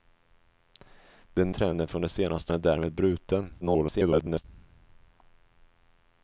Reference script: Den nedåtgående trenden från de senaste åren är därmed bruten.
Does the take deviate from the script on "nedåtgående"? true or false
true